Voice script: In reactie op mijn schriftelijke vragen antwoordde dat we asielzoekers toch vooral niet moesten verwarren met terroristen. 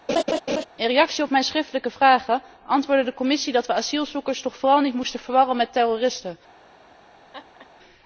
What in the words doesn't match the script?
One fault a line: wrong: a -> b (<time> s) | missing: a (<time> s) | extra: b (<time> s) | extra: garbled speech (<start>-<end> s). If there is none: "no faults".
extra: de Commissie (3.0 s)